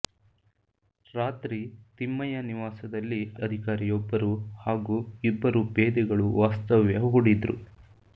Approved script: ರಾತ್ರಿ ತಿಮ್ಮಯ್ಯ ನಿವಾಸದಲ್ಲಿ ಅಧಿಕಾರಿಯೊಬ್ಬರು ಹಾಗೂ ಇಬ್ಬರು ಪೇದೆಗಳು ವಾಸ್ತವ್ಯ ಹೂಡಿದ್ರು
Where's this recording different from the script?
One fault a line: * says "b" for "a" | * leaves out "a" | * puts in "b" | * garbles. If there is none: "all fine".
all fine